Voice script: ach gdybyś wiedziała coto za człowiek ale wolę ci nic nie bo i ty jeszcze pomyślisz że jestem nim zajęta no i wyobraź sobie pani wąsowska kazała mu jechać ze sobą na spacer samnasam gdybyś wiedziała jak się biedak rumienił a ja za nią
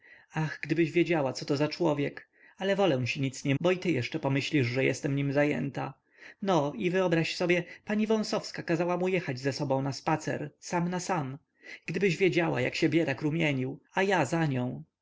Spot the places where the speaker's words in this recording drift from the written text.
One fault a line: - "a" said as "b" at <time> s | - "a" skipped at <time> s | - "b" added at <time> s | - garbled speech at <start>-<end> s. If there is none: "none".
none